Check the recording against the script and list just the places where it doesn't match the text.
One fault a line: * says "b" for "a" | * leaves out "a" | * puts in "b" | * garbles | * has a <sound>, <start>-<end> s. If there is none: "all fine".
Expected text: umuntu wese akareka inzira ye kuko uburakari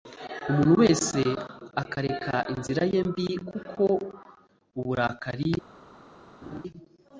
* puts in "mbi"
* has a laugh, 6.4-6.6 s